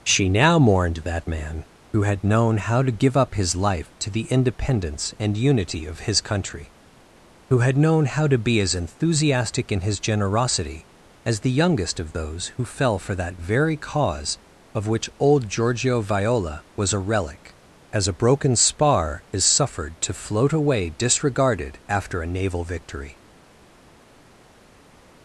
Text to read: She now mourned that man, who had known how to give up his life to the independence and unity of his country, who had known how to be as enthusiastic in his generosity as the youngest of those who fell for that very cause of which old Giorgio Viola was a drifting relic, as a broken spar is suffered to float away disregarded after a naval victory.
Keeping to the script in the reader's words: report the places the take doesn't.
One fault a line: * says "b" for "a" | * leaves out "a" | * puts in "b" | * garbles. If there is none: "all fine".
* leaves out "drifting"